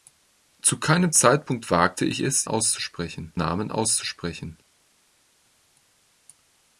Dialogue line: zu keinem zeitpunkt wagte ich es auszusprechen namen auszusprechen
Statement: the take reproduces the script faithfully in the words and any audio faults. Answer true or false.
true